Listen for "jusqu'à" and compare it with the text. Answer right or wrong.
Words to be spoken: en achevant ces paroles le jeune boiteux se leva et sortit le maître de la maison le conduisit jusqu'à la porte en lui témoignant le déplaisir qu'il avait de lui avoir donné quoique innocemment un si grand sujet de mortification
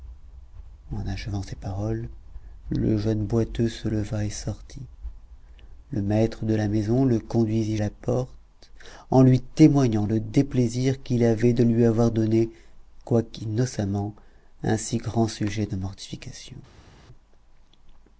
wrong